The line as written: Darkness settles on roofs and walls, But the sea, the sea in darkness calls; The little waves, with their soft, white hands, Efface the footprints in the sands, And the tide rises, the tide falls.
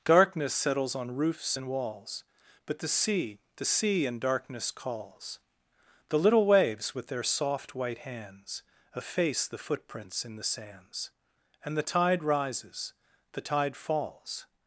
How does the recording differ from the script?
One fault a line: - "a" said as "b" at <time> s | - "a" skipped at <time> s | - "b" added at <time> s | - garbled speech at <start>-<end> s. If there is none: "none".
none